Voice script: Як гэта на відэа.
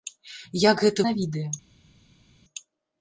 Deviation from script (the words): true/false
false